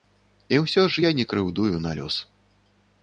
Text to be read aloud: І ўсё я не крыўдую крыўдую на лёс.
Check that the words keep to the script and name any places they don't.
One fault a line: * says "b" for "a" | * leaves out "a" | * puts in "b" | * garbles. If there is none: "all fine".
* puts in "ж"
* leaves out "крыўдую"